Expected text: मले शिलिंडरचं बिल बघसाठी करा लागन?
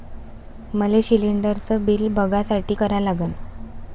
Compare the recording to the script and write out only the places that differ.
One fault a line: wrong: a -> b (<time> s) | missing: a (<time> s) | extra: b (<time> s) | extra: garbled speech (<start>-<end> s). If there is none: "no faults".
no faults